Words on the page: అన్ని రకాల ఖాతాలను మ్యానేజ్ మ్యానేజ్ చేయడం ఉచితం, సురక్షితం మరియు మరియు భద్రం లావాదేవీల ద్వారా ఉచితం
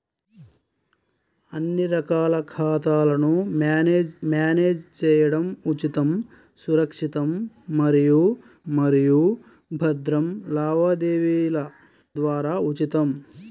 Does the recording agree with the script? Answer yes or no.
yes